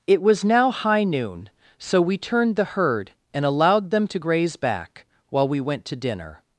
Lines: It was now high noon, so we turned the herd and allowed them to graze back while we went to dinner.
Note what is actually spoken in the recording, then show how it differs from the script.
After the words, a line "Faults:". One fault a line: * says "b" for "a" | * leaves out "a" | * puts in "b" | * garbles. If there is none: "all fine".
It was now high noon, so we turned the herd and allowed them to graze back while we went to dinner.
Faults:
all fine